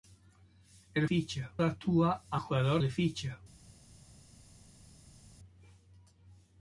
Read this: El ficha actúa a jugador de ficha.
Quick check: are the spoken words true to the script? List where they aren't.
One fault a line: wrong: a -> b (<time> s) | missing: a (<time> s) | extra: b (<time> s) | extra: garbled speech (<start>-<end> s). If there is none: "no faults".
no faults